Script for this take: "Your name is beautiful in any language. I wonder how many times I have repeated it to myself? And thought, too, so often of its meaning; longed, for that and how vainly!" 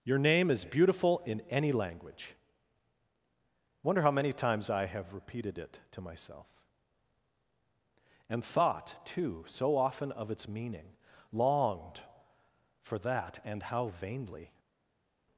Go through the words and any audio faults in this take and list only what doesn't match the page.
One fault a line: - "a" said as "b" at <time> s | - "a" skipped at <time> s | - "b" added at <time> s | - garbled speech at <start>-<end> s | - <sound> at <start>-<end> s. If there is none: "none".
- "I" skipped at 2.4 s